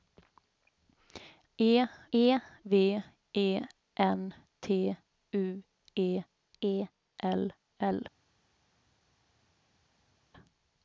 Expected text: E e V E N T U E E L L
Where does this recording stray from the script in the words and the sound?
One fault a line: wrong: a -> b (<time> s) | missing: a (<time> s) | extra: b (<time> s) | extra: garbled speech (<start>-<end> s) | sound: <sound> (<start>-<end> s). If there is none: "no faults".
no faults